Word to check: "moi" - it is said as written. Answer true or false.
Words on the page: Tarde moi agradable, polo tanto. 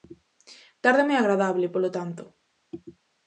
true